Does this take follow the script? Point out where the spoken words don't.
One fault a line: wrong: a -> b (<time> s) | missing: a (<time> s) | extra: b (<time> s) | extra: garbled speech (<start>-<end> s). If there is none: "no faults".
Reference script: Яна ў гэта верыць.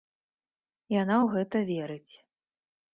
no faults